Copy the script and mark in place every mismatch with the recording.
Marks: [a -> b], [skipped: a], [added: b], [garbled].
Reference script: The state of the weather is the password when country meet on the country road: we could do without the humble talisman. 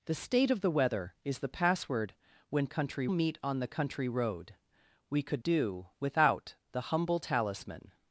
The state of the weather is the password when country meet on the country road: we could do without the humble talisman.